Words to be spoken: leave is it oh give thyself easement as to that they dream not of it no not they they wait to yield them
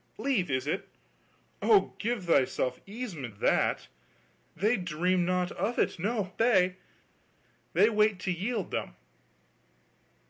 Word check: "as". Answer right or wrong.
wrong